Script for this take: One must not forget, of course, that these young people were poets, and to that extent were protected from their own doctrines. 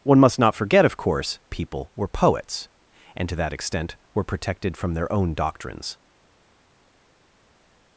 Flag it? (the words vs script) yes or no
yes